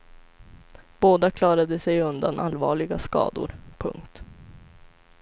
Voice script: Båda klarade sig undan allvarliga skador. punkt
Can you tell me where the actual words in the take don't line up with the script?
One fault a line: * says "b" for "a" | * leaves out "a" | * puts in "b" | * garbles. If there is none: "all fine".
all fine